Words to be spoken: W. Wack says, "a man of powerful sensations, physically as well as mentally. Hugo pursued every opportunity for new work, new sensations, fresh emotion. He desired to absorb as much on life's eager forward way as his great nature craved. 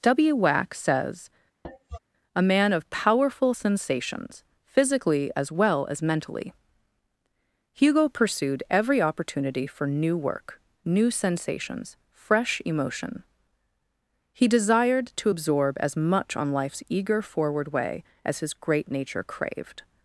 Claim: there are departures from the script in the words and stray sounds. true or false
true